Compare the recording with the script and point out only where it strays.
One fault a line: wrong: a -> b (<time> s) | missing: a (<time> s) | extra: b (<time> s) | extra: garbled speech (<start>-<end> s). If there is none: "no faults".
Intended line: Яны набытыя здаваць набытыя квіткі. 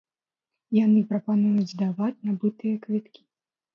wrong: набытыя -> прапануюць (1.1 s)